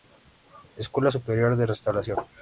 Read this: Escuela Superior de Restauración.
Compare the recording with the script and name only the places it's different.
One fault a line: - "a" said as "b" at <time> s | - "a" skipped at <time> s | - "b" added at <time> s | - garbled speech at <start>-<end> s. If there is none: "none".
none